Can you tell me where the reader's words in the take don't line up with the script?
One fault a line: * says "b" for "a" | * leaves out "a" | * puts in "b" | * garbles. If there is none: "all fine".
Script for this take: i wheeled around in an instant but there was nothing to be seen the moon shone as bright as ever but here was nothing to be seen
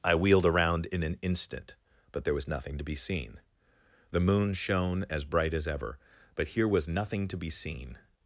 all fine